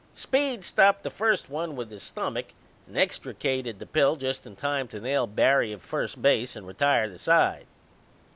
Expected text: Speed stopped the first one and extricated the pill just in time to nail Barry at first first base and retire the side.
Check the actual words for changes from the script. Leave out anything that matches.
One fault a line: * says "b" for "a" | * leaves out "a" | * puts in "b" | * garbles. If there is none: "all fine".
* puts in "with his stomach"
* leaves out "first"